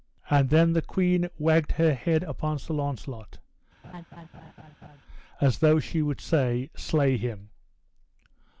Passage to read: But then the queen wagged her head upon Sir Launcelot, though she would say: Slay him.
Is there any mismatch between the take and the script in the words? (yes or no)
yes